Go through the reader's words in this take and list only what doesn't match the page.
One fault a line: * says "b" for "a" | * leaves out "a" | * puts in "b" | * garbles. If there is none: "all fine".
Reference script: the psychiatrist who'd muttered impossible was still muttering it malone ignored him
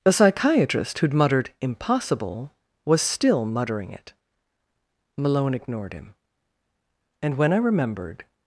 * puts in "and when i remembered"